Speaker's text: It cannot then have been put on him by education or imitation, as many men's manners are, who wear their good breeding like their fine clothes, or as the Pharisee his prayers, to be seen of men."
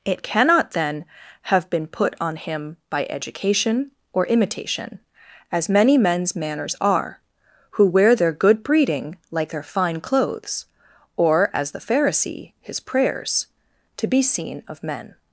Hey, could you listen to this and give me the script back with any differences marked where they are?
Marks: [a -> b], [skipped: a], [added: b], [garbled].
It cannot then have been put on him by education or imitation, as many men's manners are, who wear their good breeding like their fine clothes, or as the Pharisee his prayers, to be seen of men."